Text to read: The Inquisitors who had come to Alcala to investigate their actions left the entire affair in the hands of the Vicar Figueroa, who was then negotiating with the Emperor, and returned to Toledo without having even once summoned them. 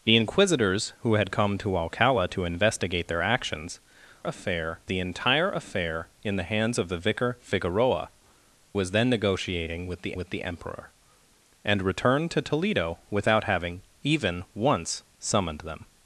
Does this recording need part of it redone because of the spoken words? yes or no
yes